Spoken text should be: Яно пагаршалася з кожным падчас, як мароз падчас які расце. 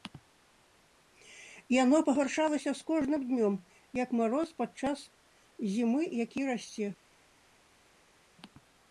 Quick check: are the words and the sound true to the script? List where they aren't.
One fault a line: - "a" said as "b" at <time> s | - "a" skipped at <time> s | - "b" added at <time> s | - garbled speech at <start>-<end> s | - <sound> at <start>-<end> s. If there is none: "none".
- "падчас" said as "днём" at 3.3 s
- "зімы" added at 5.7 s